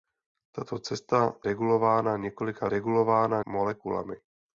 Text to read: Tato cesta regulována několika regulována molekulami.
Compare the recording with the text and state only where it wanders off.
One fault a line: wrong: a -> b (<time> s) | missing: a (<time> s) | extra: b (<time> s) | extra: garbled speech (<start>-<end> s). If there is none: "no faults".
no faults